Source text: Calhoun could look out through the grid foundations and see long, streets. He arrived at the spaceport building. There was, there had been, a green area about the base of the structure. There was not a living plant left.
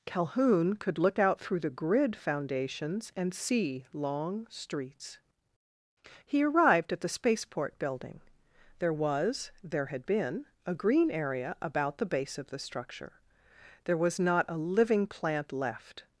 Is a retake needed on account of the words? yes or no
no